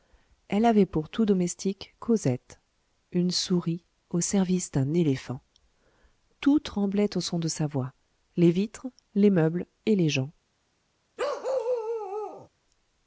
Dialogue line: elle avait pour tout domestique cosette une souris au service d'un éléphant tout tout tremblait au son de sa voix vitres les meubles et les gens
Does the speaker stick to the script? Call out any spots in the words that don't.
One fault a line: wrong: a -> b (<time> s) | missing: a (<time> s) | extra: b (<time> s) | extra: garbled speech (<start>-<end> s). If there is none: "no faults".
missing: tout (6.6 s)
extra: les (8.4 s)